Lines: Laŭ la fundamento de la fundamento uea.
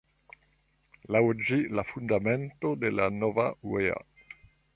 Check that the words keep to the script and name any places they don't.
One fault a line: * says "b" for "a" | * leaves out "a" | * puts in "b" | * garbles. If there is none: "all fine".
* puts in "ĝi"
* says "nova" for "fundamento"